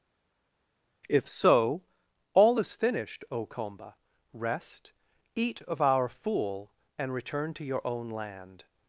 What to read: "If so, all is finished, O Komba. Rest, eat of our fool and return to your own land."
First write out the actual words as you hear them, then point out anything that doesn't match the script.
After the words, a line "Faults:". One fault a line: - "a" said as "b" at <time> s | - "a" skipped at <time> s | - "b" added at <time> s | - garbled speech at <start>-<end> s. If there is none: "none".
"If so, all is finished, O Komba. Rest, eat of our fool and return to your own land."
Faults:
none